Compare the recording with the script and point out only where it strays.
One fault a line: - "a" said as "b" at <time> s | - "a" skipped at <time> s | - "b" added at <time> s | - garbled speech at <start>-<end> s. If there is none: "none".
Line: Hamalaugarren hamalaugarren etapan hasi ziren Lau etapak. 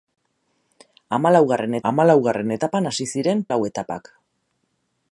none